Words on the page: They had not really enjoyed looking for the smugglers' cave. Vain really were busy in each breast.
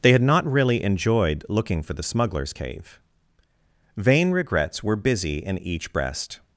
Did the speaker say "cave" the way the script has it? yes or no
yes